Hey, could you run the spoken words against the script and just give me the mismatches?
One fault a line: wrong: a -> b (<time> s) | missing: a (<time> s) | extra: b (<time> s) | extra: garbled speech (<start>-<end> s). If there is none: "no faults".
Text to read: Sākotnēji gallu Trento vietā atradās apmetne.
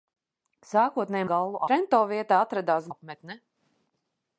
no faults